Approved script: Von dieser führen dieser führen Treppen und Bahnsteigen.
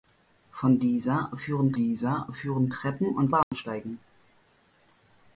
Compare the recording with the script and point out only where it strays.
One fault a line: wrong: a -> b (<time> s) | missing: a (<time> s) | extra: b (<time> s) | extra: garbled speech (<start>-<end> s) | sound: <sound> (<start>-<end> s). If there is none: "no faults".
sound: dropout (3.4-3.5 s)